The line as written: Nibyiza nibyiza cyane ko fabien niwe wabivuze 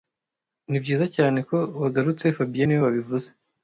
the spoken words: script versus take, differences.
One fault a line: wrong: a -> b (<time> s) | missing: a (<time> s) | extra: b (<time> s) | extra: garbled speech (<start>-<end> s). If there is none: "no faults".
missing: nibyiza (1.1 s)
extra: wagarutse (1.8 s)